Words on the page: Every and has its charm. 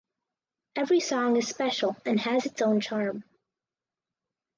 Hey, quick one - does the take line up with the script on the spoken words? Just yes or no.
no